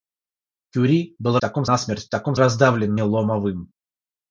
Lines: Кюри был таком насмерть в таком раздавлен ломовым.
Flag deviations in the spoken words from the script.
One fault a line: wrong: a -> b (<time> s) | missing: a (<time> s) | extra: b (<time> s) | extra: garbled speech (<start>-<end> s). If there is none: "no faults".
no faults